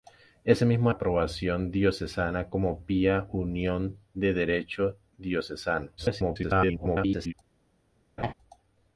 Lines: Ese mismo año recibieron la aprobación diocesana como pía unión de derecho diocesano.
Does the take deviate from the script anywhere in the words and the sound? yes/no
yes